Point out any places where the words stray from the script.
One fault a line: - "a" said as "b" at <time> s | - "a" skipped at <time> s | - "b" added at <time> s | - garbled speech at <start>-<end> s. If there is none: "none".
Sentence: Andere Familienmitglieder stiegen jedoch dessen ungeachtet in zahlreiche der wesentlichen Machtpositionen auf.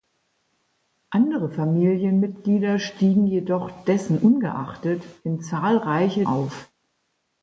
- "der wesentlichen Machtpositionen" skipped at 6.2 s